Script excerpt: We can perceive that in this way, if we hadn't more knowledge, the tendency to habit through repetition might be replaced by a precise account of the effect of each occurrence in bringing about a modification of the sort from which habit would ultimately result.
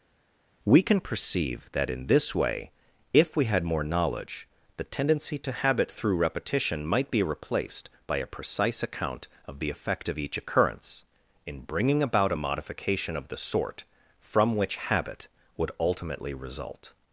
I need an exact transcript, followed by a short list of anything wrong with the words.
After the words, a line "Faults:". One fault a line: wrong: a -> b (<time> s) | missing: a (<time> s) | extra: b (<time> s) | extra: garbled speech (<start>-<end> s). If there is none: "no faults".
We can perceive that in this way, if we had more knowledge, the tendency to habit through repetition might be replaced by a precise account of the effect of each occurrence in bringing about a modification of the sort from which habit would ultimately result.
Faults:
wrong: hadn't -> had (3.4 s)